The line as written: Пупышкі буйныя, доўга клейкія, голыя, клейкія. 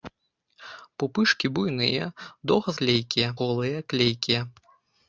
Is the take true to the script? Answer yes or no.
yes